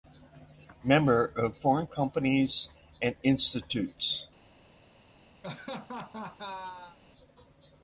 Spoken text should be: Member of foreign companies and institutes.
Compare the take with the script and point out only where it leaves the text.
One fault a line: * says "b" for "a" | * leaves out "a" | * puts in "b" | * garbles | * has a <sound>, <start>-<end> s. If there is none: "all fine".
* has a laugh, 5.4-7.0 s